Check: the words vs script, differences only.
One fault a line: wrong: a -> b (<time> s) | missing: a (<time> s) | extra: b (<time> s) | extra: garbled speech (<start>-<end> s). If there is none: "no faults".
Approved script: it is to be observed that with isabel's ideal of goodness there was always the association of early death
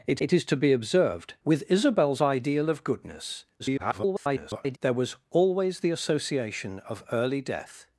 extra: it (0.2 s)
missing: that (1.3 s)
extra: garbled speech (3.6-4.8 s)